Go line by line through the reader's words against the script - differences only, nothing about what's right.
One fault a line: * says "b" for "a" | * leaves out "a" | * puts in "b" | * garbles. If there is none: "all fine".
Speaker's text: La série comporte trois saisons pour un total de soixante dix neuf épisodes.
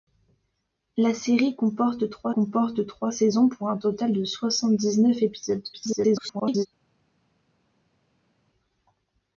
* puts in "comporte trois"
* garbles